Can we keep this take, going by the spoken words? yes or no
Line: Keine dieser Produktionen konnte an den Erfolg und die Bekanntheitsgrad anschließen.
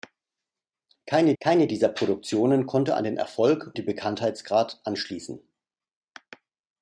no